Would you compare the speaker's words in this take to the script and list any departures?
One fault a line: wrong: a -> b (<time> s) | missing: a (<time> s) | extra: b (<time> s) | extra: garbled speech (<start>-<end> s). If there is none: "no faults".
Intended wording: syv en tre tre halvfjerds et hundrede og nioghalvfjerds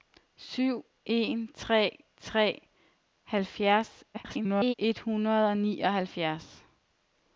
extra: garbled speech (4.1-4.7 s)